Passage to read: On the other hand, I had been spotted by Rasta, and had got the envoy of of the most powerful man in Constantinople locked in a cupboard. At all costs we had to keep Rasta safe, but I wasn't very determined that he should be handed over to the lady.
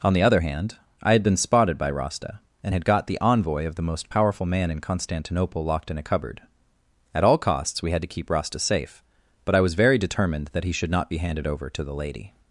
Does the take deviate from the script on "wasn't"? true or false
true